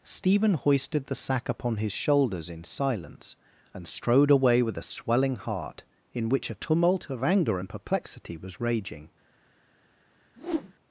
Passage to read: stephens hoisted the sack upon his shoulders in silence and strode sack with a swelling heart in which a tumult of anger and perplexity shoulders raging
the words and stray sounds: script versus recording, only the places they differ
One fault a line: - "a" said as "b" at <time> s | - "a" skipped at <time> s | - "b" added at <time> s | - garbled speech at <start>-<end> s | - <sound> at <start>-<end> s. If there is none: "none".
- "stephens" said as "stephen" at 0.0 s
- "sack" said as "away" at 4.3 s
- "shoulders" said as "was" at 8.4 s
- whoosh at 10.4-10.7 s